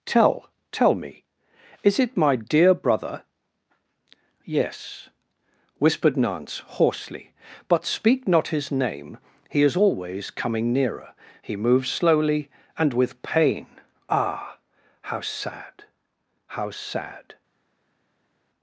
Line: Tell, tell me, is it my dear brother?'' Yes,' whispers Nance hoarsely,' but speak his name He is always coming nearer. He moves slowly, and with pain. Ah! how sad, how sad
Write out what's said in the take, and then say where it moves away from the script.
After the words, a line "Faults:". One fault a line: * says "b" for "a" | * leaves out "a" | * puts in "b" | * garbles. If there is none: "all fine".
Tell, tell me, is it my dear brother?'' Yes,' whispered Nance hoarsely,' but speak not his name He is always coming nearer. He moves slowly, and with pain. Ah! how sad, how sad
Faults:
* says "whispered" for "whispers"
* puts in "not"